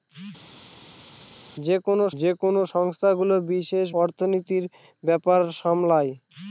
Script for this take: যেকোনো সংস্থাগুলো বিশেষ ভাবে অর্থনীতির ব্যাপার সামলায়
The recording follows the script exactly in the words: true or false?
false